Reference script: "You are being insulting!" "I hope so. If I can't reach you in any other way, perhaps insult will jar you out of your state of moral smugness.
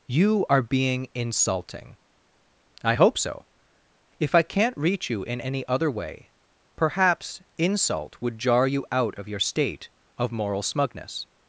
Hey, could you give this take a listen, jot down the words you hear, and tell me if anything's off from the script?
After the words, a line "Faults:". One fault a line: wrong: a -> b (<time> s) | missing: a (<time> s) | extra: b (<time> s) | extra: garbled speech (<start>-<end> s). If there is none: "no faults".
"You are being insulting!" "I hope so. If I can't reach you in any other way, perhaps insult would jar you out of your state of moral smugness.
Faults:
wrong: will -> would (8.2 s)